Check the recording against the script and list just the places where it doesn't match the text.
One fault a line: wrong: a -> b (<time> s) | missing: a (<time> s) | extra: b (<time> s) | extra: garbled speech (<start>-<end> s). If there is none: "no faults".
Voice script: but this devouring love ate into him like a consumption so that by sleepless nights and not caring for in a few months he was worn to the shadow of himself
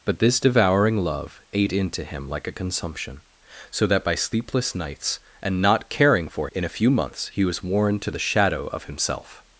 no faults